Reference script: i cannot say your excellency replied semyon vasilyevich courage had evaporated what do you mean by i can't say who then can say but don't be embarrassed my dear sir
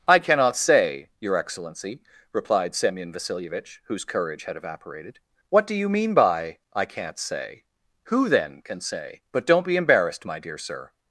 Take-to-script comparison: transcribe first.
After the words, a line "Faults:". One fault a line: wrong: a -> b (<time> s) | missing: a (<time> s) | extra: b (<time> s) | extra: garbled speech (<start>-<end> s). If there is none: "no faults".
i cannot say your excellency replied semyon vasilyevich whose courage had evaporated what do you mean by i can't say who then can say but don't be embarrassed my dear sir
Faults:
extra: whose (3.9 s)